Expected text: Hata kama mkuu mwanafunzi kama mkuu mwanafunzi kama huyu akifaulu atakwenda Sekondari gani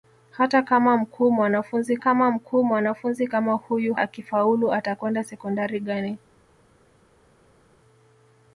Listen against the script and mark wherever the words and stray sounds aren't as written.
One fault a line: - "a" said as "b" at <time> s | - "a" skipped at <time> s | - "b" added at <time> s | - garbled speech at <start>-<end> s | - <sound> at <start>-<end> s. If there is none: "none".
none